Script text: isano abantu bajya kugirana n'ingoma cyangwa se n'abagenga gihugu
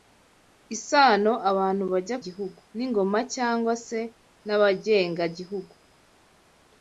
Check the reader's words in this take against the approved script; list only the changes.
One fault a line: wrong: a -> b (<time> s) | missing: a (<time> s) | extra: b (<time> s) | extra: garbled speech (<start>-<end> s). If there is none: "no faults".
wrong: kugirana -> gihugu (2.2 s)